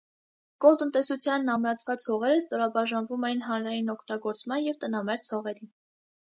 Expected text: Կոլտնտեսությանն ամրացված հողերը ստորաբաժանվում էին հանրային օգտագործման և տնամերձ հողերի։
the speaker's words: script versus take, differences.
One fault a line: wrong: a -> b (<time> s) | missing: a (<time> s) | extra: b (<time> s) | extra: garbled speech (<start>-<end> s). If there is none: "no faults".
no faults